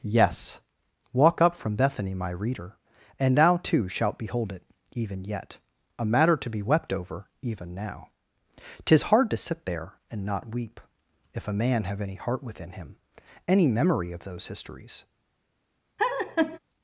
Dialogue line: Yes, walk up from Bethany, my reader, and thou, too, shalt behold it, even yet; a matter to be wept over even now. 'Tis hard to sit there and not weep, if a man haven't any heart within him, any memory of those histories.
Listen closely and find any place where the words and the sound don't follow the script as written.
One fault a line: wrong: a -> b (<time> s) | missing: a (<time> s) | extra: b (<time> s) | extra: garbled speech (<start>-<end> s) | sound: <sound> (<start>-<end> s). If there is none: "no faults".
wrong: haven't -> have (11.8 s)
sound: laugh (16.0-16.6 s)